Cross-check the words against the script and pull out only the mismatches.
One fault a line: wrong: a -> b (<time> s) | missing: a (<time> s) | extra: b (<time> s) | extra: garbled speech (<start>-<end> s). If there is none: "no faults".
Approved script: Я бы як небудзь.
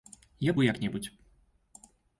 no faults